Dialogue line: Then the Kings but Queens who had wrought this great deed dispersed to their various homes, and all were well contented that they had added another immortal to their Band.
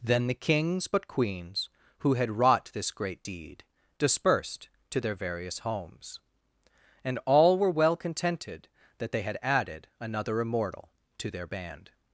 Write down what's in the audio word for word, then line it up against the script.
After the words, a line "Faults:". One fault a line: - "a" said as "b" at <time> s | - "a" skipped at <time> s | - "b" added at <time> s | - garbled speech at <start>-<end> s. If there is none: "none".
Then the Kings but Queens who had wrought this great deed dispersed to their various homes, and all were well contented that they had added another immortal to their Band.
Faults:
none